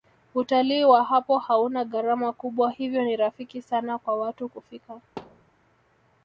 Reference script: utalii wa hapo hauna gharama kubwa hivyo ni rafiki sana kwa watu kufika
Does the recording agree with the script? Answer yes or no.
yes